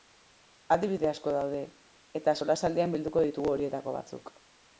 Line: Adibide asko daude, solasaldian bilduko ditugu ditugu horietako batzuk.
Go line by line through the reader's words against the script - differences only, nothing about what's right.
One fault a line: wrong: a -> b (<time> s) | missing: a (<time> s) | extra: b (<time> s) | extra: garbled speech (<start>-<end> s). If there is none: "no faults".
extra: eta (2.2 s)
missing: ditugu (3.5 s)